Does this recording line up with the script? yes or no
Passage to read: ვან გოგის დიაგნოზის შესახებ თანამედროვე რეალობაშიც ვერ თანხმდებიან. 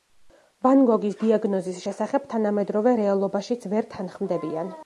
yes